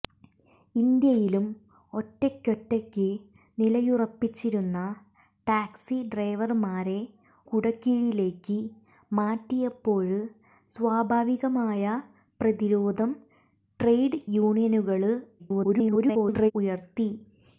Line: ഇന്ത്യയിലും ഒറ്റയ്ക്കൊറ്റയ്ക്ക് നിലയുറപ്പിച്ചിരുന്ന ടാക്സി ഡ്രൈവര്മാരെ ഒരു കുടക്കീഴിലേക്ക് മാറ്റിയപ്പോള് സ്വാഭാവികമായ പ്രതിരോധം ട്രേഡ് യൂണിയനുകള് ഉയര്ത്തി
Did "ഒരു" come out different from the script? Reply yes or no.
yes